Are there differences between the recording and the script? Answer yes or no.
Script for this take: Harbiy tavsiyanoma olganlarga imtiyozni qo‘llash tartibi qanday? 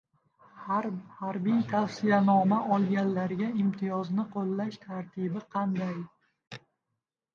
no